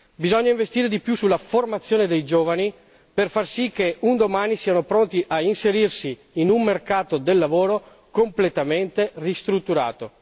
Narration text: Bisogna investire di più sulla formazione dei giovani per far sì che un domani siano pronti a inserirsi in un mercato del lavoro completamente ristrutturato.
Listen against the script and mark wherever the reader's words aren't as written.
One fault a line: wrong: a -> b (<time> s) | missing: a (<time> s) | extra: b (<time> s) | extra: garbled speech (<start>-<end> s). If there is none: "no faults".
no faults